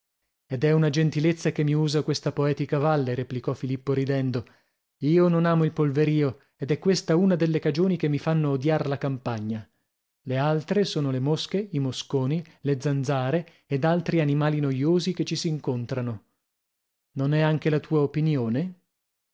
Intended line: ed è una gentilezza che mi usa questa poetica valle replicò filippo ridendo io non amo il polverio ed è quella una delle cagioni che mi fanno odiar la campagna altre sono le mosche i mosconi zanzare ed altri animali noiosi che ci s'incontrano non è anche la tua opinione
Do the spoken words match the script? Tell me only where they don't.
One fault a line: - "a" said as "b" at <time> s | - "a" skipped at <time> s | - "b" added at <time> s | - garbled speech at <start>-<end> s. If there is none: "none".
- "quella" said as "questa" at 6.8 s
- "le" added at 10.2 s
- "le" added at 12.6 s